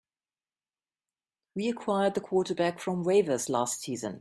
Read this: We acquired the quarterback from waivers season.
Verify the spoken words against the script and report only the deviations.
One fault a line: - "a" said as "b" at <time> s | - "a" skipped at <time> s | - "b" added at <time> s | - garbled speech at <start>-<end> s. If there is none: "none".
- "last" added at 3.5 s